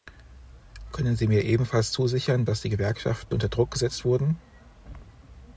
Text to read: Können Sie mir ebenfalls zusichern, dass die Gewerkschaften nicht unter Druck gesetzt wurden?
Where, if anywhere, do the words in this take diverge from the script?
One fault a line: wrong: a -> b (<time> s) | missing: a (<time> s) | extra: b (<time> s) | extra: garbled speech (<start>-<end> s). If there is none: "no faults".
missing: nicht (3.3 s)